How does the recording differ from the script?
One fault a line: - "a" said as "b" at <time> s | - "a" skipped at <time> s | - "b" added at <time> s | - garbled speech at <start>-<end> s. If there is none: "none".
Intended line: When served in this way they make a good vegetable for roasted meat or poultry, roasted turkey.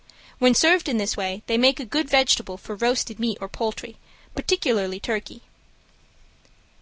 - "roasted" said as "particularly" at 4.4 s